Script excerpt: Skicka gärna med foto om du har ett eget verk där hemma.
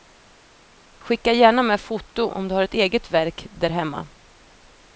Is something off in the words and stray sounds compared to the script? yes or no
no